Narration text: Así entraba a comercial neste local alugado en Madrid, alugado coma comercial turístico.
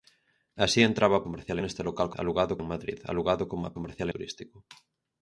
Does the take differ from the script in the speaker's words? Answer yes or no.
no